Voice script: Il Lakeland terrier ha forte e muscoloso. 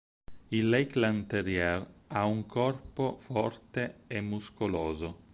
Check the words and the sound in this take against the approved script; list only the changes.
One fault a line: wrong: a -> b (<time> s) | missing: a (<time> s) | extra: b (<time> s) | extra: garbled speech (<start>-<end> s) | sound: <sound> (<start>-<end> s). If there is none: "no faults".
extra: un corpo (2.2 s)